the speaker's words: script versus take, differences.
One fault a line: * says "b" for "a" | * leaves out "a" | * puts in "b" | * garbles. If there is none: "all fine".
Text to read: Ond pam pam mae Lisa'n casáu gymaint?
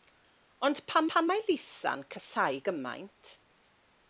all fine